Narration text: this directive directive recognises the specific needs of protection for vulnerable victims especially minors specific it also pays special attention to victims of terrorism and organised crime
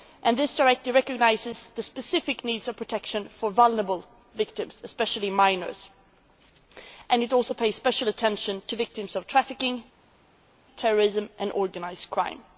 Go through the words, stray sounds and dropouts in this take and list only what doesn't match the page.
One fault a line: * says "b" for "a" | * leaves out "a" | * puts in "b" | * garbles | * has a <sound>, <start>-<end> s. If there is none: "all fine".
* leaves out "directive"
* says "and" for "specific"
* puts in "trafficking"